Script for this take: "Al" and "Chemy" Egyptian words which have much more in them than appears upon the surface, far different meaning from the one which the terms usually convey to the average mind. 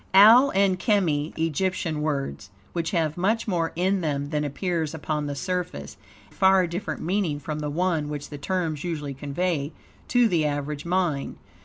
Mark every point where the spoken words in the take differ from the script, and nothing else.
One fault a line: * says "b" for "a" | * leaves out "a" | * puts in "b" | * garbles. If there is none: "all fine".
all fine